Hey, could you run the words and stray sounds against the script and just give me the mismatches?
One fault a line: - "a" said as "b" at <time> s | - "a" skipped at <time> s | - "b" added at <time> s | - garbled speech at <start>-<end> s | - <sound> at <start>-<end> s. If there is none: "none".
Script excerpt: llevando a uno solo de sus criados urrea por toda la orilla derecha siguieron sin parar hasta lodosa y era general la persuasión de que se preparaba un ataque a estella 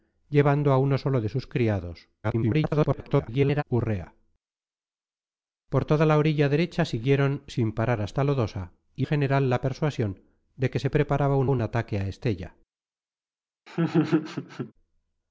- garbled speech at 2.2-3.6 s
- "era" skipped at 9.1 s
- "un" added at 11.5 s
- laugh at 13.7-14.7 s